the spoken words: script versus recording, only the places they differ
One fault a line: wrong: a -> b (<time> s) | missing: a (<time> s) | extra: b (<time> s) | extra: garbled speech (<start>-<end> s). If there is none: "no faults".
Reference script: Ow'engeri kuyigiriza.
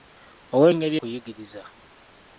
no faults